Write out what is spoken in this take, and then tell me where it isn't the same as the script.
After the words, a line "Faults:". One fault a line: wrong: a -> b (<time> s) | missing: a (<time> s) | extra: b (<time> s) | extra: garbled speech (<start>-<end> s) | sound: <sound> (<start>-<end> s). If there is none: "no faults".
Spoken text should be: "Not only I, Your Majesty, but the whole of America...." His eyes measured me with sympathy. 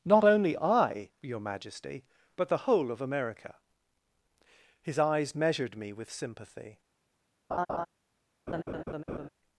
"Not only I, Your Majesty, but the whole of America...." His eyes measured me with sympathy.
Faults:
sound: laugh (7.5-7.9 s)
sound: laugh (8.5-9.3 s)